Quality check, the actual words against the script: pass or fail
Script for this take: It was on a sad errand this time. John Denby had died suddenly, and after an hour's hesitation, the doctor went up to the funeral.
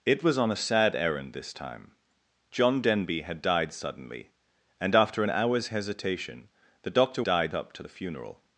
fail